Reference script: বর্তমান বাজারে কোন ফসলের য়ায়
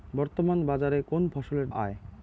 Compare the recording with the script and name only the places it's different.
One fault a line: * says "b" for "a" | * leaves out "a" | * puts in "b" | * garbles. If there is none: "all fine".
all fine